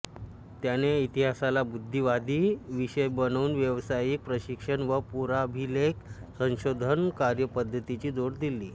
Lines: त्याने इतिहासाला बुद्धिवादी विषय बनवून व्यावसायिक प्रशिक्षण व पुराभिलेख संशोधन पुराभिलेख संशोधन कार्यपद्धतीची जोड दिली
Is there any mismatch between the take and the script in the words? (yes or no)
yes